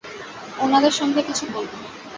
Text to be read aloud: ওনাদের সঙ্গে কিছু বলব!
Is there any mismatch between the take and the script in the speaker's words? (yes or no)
no